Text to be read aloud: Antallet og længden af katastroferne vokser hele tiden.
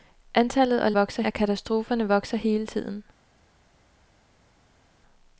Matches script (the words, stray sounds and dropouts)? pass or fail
fail